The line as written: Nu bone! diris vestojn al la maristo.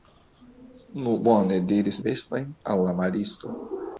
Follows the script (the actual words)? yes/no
yes